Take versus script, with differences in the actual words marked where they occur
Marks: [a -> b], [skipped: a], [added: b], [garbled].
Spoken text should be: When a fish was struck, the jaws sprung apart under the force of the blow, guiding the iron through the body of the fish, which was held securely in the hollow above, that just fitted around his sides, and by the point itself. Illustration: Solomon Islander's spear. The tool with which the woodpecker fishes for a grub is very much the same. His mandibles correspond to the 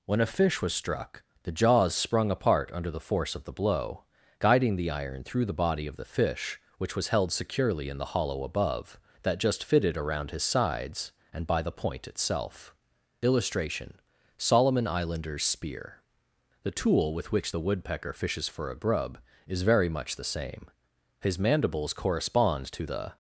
When a fish was struck, the jaws sprung apart under the force of the blow, guiding the iron through the body of the fish, which was held securely in the hollow above, that just fitted around his sides, and by the point itself. Illustration: Solomon Islander's spear. The tool with which the woodpecker fishes for a grub is very much the same. His mandibles correspond to the